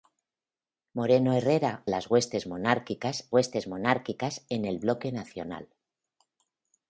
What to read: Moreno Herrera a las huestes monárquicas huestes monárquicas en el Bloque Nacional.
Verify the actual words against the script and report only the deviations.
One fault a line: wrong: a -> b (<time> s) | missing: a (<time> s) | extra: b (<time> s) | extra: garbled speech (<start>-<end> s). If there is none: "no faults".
no faults